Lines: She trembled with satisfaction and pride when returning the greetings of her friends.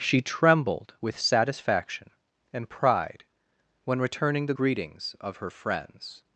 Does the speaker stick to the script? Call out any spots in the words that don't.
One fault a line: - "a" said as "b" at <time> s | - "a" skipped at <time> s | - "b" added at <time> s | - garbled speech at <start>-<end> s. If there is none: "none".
none